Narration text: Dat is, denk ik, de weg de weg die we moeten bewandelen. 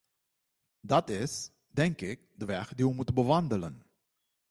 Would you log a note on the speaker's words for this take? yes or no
yes